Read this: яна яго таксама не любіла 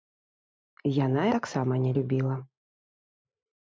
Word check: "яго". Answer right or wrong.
wrong